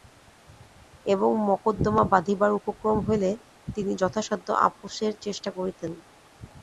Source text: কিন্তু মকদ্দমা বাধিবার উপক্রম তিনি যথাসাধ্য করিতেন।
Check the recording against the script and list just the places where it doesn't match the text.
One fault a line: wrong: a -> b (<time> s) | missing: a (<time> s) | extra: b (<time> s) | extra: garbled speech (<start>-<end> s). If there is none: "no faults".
wrong: কিন্তু -> এবং (1.1 s)
extra: হইলে (3.1 s)
extra: আপসের চেষ্টা (4.7 s)